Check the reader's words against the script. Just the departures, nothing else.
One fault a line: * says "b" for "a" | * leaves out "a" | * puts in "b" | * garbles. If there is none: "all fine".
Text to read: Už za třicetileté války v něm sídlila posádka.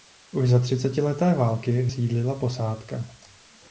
* leaves out "něm"